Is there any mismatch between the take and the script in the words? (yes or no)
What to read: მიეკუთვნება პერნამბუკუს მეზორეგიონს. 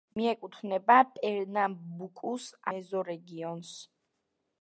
no